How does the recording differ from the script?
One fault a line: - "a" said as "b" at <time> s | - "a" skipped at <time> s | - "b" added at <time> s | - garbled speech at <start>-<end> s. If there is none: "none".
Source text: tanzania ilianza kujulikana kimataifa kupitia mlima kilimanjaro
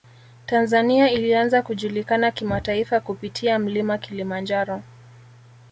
none